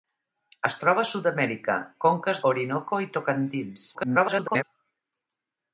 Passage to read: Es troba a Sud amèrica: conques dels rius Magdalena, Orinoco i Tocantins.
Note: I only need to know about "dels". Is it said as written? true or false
false